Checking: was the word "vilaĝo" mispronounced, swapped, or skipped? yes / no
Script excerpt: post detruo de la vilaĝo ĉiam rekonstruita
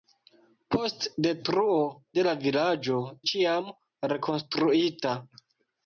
no